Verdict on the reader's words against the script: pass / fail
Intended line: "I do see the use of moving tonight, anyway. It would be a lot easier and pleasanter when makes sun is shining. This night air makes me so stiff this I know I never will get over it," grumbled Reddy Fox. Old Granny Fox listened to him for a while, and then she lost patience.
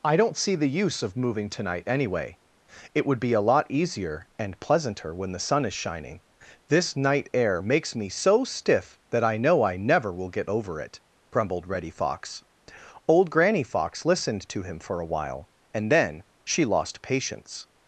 fail